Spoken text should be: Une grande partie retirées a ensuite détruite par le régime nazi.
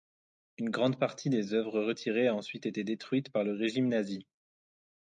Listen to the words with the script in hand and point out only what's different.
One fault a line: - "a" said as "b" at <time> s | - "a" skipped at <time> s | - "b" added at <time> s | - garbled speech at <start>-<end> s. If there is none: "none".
- "des œuvres" added at 1.3 s
- "été" added at 2.6 s